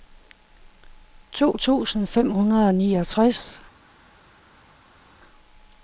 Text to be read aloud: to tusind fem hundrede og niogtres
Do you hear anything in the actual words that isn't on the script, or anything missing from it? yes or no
no